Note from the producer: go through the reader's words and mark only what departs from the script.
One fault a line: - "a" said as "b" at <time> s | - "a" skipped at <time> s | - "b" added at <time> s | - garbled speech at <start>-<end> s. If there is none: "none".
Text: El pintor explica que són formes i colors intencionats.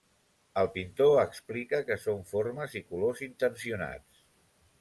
none